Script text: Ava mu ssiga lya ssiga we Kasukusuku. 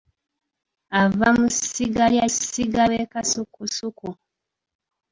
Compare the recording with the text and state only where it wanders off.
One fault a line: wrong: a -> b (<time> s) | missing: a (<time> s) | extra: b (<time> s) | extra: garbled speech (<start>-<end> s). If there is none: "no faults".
no faults